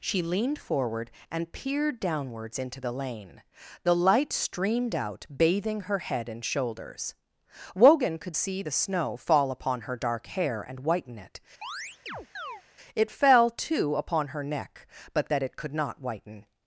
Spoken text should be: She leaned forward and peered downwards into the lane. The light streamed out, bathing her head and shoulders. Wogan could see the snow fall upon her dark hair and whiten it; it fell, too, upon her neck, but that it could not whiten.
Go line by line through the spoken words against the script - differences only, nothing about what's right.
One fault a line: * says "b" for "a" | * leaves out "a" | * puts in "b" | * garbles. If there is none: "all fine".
all fine